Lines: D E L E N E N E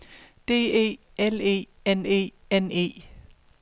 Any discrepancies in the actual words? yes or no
no